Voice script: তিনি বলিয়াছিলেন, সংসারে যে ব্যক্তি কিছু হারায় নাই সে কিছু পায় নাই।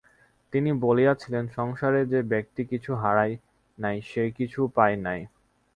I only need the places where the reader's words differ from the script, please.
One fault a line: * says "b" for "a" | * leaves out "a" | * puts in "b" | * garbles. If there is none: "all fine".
all fine